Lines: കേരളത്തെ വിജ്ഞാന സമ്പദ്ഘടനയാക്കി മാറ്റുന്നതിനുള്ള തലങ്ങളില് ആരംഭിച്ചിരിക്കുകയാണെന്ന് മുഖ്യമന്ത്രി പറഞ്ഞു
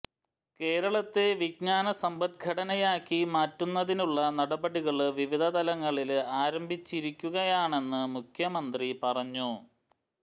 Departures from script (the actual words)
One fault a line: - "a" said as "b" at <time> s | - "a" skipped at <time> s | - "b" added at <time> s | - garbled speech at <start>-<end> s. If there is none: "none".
- "നടപടികള് വിവിധ" added at 4.4 s